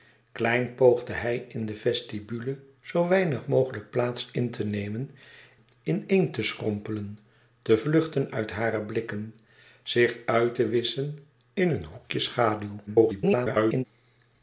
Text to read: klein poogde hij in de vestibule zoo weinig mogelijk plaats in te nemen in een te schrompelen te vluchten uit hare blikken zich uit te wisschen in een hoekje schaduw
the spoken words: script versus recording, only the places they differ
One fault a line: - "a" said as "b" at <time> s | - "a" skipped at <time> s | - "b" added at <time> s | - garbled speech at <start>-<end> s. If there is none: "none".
- garbled speech at 12.9-13.9 s